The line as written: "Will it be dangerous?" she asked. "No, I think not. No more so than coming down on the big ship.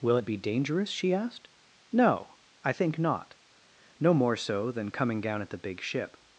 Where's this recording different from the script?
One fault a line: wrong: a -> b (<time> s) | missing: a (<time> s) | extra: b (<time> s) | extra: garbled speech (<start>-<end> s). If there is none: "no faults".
wrong: on -> at (5.4 s)